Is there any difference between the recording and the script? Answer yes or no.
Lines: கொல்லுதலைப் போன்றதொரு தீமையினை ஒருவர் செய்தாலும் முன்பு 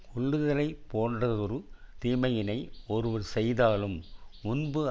no